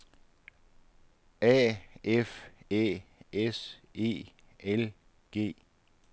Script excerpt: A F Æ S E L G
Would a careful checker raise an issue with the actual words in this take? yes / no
no